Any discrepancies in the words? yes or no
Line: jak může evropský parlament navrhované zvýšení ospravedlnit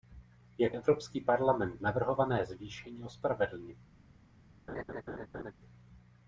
yes